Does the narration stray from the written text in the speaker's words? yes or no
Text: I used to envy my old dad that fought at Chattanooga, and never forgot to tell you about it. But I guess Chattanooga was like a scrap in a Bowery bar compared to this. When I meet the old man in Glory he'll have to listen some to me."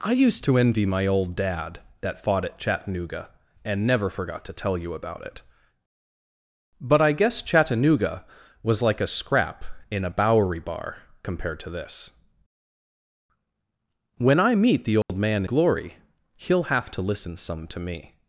yes